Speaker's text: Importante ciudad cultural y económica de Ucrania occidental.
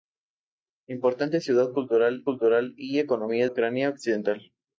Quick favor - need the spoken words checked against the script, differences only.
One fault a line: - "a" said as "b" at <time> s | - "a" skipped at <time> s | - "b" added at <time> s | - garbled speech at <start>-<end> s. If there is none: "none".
- "cultural" added at 2.2 s
- "de" skipped at 3.5 s